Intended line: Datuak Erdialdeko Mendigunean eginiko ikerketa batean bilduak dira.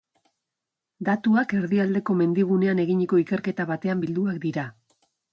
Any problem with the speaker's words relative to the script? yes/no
no